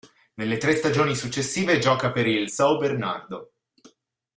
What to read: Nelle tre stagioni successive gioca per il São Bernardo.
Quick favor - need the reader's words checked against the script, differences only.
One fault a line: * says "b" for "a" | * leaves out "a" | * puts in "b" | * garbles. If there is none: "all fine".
all fine